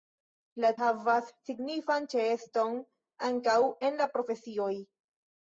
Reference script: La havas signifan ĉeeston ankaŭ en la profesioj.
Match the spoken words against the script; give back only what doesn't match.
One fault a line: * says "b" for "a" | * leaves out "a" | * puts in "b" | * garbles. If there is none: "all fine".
all fine